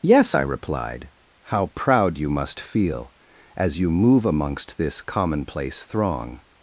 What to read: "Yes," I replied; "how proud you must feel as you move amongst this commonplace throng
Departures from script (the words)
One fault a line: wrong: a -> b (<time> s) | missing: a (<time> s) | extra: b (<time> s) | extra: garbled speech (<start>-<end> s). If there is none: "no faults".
no faults